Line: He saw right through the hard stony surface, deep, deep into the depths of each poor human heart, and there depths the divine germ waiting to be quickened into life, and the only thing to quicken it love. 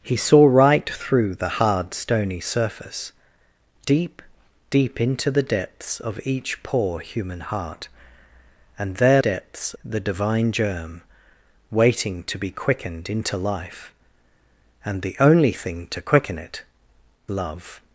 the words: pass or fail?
pass